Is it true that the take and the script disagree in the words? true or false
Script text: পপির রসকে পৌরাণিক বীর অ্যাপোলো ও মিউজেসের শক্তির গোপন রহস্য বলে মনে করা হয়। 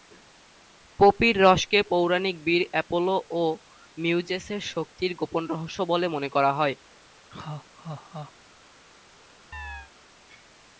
false